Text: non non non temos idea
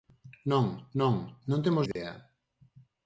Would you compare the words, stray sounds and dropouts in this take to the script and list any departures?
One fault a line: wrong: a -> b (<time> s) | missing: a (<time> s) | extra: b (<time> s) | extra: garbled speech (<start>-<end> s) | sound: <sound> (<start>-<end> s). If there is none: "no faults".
sound: dropout (1.9-2.0 s)